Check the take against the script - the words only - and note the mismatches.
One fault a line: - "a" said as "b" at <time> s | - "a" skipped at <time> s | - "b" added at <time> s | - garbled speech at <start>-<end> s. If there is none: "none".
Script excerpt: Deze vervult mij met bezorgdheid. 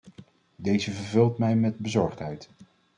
none